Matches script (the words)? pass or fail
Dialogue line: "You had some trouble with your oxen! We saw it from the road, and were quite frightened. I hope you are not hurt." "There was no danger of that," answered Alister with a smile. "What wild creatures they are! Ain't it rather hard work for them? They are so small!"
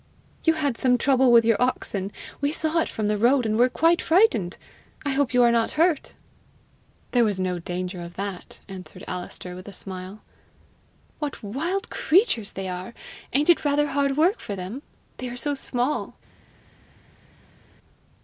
pass